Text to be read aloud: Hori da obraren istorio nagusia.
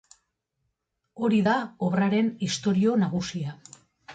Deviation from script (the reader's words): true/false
false